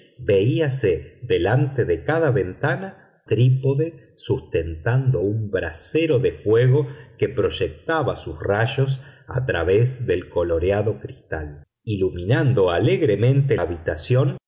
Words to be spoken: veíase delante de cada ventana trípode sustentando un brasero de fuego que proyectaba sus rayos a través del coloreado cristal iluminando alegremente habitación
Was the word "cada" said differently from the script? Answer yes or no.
no